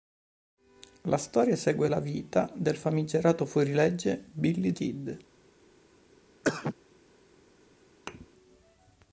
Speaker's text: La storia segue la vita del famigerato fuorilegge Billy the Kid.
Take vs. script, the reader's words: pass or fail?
fail